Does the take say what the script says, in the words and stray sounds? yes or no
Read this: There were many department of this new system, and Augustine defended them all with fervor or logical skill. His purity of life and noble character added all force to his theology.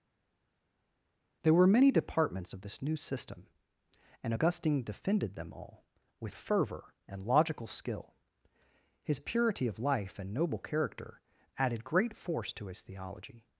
no